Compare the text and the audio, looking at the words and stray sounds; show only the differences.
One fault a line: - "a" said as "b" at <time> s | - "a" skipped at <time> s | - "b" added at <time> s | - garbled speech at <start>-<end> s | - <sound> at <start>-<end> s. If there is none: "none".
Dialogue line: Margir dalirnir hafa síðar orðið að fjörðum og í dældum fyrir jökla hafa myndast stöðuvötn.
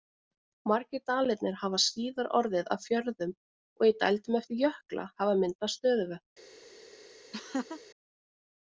- "fyrir" said as "eftir" at 4.4 s
- laugh at 7.3-7.8 s